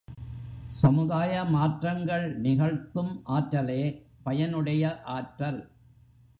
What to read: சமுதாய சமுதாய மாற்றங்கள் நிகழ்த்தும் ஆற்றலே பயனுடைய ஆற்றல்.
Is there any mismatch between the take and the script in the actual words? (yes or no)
yes